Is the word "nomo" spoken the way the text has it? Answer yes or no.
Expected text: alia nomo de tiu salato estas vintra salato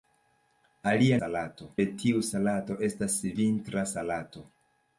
no